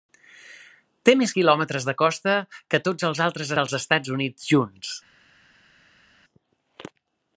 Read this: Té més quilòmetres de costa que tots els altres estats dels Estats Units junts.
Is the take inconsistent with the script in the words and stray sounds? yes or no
yes